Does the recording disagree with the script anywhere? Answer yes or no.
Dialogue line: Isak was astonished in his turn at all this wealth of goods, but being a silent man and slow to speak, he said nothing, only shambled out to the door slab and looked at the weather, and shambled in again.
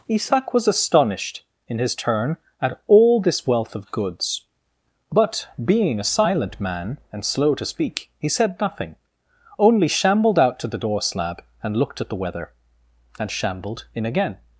no